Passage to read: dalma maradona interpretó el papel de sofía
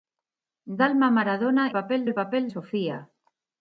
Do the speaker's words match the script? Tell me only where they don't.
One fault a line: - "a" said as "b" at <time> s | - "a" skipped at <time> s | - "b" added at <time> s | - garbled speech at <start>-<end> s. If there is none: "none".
- "interpretó" said as "papel" at 1.7 s
- "de" skipped at 2.5 s